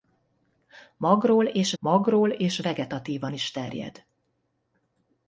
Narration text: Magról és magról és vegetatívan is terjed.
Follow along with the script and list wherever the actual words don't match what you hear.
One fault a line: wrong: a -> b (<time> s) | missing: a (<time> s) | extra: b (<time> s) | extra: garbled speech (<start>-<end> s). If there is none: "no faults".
no faults